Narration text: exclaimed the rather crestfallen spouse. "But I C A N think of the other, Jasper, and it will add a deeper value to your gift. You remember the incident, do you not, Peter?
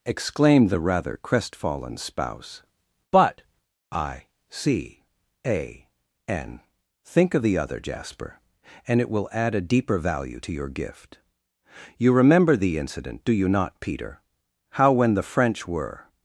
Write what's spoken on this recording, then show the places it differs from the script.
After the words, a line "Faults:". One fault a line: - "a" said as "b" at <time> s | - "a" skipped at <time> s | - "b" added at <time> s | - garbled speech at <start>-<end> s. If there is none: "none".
exclaimed the rather crestfallen spouse. "But I C A N think of the other, Jasper, and it will add a deeper value to your gift. You remember the incident, do you not, Peter? How when the French were
Faults:
- "How when the French were" added at 14.7 s